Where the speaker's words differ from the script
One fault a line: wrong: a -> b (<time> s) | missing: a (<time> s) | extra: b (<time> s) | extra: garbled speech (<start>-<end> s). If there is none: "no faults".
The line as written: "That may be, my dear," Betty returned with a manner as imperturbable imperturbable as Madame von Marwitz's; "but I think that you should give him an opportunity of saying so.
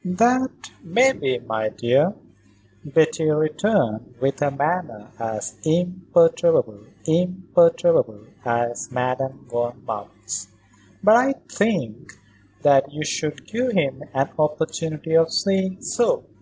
no faults